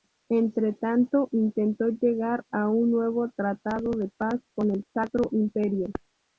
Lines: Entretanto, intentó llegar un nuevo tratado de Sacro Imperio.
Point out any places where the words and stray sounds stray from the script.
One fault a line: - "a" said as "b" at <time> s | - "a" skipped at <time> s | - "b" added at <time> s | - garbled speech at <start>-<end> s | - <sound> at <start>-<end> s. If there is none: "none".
- "a" added at 2.5 s
- "paz con el" added at 4.2 s